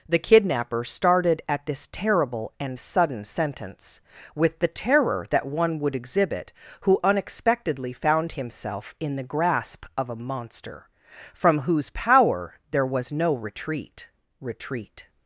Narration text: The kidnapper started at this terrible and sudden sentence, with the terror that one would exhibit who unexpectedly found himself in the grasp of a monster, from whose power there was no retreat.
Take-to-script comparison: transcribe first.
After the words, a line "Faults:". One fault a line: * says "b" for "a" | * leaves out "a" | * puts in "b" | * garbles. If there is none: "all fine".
The kidnapper started at this terrible and sudden sentence, with the terror that one would exhibit who unexpectedly found himself in the grasp of a monster, from whose power there was no retreat retreat.
Faults:
* puts in "retreat"